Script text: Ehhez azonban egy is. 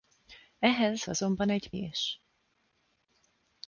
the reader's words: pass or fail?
pass